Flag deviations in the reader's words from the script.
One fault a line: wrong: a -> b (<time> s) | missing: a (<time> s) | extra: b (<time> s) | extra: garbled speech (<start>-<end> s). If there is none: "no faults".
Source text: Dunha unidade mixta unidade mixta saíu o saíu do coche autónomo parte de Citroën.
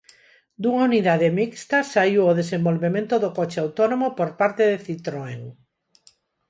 missing: unidade mixta (1.8 s)
wrong: saíu -> desenvolvemento (2.4 s)
extra: por (4.2 s)